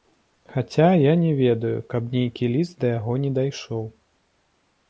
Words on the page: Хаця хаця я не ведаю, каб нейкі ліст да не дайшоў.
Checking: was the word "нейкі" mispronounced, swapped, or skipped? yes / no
no